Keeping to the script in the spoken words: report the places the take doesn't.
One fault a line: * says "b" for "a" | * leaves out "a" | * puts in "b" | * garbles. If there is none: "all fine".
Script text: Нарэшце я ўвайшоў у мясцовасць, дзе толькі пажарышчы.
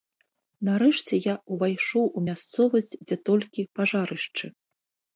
all fine